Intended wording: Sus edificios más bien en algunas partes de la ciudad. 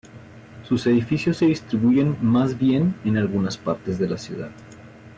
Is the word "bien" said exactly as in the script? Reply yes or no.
yes